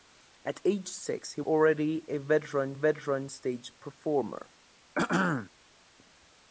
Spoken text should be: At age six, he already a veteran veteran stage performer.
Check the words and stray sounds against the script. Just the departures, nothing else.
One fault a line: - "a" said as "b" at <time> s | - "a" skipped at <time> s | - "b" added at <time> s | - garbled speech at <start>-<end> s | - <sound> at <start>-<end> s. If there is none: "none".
- throat clearing at 4.9-5.5 s